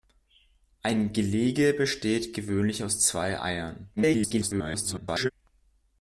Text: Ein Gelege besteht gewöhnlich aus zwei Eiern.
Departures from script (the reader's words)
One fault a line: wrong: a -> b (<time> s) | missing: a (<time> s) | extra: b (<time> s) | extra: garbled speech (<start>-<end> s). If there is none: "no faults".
extra: garbled speech (4.0-5.3 s)